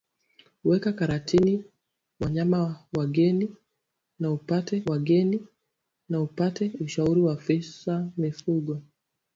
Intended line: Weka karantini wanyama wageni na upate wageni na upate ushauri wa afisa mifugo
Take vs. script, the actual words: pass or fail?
pass